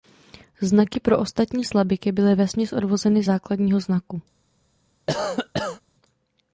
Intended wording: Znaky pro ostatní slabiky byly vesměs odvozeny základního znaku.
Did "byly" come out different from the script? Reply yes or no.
no